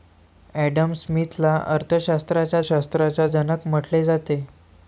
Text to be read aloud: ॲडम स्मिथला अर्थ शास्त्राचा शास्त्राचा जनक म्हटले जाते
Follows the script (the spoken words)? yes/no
yes